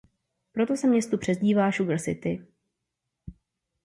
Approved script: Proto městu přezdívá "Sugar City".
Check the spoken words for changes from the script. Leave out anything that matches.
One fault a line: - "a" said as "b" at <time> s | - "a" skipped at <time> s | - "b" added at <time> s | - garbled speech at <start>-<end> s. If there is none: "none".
- "se" added at 0.8 s